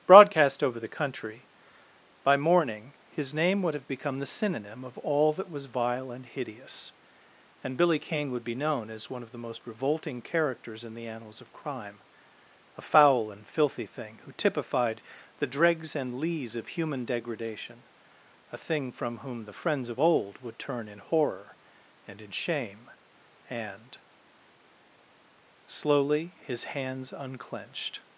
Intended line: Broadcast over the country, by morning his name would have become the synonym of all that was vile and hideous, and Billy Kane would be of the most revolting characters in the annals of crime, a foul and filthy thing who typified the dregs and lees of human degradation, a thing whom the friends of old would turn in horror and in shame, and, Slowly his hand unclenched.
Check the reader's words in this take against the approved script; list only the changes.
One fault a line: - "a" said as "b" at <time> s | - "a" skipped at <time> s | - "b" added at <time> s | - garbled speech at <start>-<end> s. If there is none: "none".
- "known as one" added at 8.6 s
- "from" added at 18.9 s
- "hand" said as "hands" at 26.6 s